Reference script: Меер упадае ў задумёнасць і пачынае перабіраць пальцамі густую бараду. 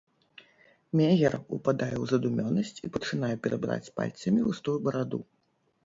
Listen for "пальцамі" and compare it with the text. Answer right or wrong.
right